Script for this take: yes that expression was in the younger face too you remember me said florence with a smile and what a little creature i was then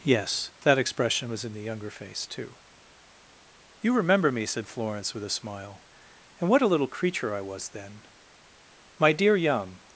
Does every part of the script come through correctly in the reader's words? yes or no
no